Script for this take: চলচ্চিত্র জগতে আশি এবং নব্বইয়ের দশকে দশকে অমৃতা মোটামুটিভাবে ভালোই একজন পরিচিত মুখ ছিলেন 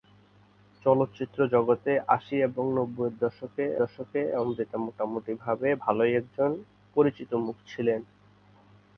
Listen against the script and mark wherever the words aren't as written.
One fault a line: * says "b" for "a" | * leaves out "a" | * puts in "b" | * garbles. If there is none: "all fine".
all fine